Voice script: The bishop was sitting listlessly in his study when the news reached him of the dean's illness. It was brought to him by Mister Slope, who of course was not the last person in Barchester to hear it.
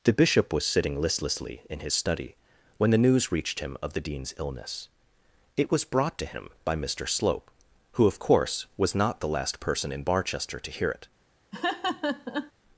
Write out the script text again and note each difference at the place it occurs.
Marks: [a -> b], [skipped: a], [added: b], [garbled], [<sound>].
The bishop was sitting listlessly in his study when the news reached him of the dean's illness. It was brought to him by Mister Slope, who of course was not the last person in Barchester to hear it. [laugh]